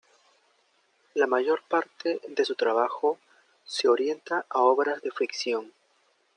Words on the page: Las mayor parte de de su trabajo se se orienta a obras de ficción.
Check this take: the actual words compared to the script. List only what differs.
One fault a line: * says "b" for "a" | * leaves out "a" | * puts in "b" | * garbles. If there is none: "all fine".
* says "La" for "Las"
* leaves out "de"
* leaves out "se"